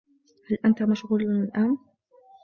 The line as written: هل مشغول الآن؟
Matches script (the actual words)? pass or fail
fail